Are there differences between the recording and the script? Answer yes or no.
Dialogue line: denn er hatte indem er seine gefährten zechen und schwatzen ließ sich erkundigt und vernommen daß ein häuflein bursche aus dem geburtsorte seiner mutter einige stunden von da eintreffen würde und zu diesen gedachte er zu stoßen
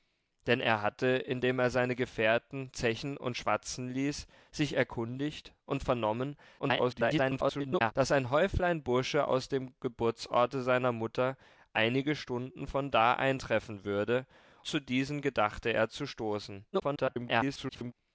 yes